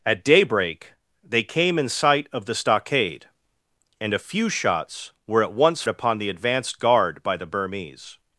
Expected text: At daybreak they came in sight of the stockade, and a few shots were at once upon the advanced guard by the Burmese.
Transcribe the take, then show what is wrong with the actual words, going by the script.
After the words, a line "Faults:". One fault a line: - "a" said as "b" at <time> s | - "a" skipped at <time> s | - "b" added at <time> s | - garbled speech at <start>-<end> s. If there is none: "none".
At daybreak they came in sight of the stockade, and a few shots were at once upon the advanced guard by the Burmese.
Faults:
none